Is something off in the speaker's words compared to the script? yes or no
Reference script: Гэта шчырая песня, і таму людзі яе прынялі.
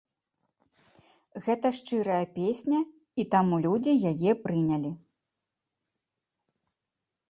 no